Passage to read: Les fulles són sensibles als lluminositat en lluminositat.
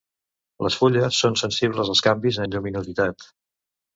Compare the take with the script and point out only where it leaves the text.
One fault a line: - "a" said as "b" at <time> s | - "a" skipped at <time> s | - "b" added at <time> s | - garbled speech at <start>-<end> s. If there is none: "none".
- "lluminositat" said as "canvis" at 2.1 s